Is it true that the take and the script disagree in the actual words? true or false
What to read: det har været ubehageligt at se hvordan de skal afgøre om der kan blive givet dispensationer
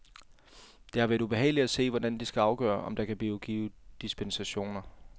false